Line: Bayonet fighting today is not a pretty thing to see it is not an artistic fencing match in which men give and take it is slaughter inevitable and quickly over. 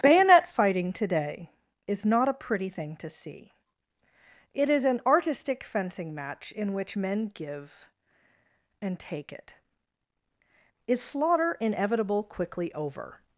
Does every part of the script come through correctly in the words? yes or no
no